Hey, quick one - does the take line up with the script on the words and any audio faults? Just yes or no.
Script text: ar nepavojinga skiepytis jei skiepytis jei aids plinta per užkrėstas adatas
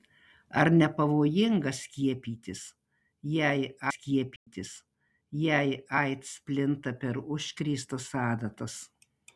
no